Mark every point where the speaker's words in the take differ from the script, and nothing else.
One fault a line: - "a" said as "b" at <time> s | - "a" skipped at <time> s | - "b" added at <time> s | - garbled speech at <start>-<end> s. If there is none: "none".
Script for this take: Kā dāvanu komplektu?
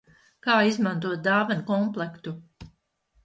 - "izmantot" added at 0.7 s